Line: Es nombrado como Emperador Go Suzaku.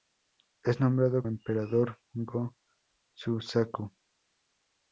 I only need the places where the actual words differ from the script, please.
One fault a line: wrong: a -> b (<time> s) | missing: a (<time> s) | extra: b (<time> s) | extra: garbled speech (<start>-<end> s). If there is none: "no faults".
missing: como (1.2 s)